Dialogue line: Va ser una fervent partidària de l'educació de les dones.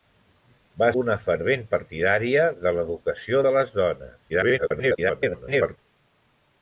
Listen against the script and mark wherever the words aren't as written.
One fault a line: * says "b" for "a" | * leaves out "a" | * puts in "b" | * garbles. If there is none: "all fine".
* leaves out "ser"
* garbles